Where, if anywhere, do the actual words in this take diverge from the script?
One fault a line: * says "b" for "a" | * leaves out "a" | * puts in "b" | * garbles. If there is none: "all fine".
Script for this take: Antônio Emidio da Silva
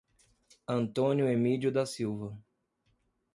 all fine